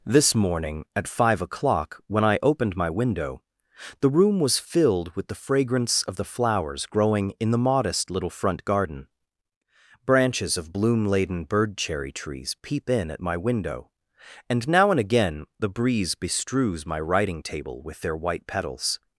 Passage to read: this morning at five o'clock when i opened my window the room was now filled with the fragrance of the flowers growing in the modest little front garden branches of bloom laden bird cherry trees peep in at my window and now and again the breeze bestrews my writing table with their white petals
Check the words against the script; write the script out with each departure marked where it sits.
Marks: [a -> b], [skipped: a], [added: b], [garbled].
this morning at five o'clock when i opened my window the room was [skipped: now] filled with the fragrance of the flowers growing in the modest little front garden branches of bloom laden bird cherry trees peep in at my window and now and again the breeze bestrews my writing table with their white petals